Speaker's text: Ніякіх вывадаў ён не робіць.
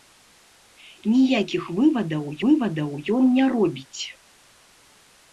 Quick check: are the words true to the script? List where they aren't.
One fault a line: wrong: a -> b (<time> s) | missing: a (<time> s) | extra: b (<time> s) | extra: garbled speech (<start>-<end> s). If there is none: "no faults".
extra: вывадаў (2.4 s)